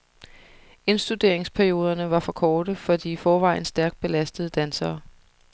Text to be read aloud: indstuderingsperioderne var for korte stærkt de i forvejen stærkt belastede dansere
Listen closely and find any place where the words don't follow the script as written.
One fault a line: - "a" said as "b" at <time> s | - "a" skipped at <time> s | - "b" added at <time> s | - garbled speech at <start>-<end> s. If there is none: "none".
- "stærkt" said as "for" at 2.8 s